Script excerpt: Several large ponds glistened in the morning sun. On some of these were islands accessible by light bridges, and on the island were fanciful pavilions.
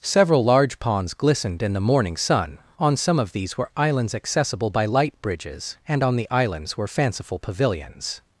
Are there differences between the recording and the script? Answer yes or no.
yes